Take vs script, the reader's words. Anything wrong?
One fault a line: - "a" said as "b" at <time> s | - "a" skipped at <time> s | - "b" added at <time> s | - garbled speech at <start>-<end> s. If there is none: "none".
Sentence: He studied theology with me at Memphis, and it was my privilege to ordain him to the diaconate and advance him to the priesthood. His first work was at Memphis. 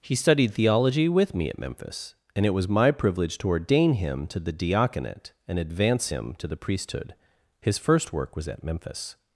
none